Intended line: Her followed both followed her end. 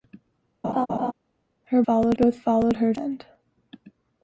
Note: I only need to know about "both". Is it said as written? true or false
true